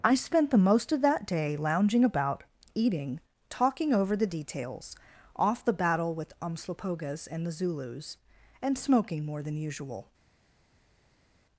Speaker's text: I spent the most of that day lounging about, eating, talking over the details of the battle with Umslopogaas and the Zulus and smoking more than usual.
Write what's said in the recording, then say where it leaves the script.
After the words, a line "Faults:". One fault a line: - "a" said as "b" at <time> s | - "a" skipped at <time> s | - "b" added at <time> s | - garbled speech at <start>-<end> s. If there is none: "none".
I spent the most of that day lounging about, eating, talking over the details off the battle with Umslopogaas and the Zulus and smoking more than usual.
Faults:
- "of" said as "off" at 5.4 s